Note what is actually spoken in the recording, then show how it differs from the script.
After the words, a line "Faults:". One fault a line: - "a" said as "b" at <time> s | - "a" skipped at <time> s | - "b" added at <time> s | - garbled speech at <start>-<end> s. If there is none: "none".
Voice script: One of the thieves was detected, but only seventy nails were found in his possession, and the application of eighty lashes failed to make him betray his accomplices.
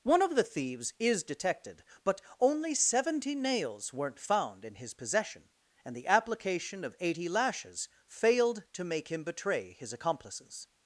One of the thieves is detected, but only seventy nails weren't found in his possession, and the application of eighty lashes failed to make him betray his accomplices.
Faults:
- "was" said as "is" at 1.0 s
- "were" said as "weren't" at 3.9 s